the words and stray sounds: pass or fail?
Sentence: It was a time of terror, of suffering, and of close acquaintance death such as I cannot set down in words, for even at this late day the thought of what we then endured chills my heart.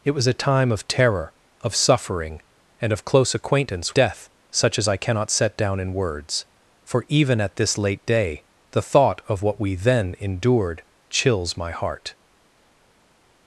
pass